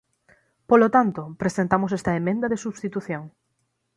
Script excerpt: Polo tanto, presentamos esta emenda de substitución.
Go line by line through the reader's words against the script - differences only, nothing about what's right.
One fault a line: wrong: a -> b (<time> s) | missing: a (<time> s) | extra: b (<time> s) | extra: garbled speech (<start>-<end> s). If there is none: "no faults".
no faults